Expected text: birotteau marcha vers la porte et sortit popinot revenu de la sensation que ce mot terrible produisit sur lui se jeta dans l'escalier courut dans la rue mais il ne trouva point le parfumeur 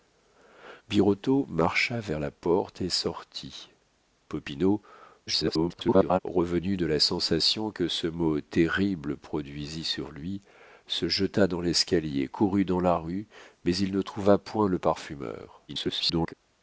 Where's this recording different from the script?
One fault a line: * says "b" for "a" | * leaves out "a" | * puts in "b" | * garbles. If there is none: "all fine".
* garbles
* garbles